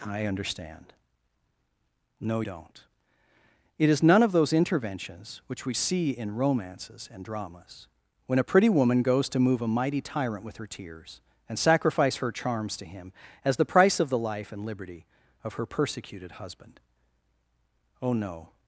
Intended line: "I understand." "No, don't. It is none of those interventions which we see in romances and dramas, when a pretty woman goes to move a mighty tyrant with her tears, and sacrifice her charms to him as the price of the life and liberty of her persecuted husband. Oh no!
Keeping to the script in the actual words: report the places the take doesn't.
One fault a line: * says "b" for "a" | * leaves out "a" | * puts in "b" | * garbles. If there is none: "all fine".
all fine